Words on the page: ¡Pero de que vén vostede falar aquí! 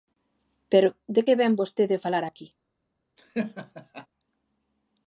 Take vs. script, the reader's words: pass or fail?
pass